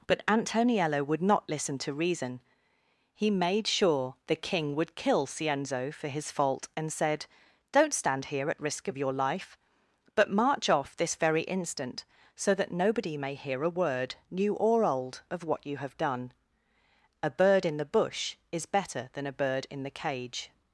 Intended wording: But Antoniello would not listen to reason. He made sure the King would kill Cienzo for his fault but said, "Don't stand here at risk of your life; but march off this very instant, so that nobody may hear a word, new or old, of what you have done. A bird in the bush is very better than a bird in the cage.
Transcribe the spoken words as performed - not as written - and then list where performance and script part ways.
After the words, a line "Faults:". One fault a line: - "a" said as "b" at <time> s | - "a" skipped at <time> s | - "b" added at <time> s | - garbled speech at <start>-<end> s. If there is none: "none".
But Antoniello would not listen to reason. He made sure the King would kill Cienzo for his fault and said, "Don't stand here at risk of your life; but march off this very instant, so that nobody may hear a word, new or old, of what you have done. A bird in the bush is better than a bird in the cage.
Faults:
- "but" said as "and" at 6.7 s
- "very" skipped at 18.7 s